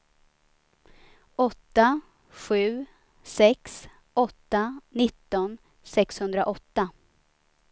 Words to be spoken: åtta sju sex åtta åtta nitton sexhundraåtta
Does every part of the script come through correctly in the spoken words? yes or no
no